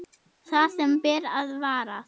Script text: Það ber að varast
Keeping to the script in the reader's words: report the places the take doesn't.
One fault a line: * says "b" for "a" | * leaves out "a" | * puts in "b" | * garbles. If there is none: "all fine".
* puts in "sem"